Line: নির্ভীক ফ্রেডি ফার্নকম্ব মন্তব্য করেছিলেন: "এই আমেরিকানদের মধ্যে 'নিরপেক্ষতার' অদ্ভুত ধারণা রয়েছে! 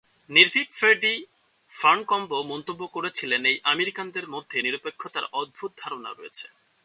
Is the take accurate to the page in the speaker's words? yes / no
yes